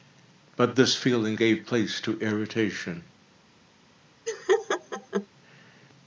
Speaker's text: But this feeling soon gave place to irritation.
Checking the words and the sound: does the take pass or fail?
fail